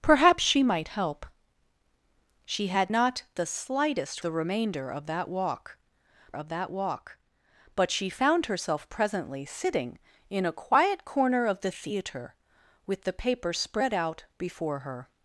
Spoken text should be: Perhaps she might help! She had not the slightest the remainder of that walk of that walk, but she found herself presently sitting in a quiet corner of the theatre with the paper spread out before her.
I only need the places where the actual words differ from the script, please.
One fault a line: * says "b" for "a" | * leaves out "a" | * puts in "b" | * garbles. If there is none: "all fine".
all fine